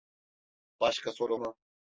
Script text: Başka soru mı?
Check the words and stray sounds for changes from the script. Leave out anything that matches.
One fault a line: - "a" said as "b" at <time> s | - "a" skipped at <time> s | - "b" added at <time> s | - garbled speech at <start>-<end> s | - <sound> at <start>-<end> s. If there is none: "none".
none